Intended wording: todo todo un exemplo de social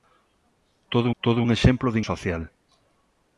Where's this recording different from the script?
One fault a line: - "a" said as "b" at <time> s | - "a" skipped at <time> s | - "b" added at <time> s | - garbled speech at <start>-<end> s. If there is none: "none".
none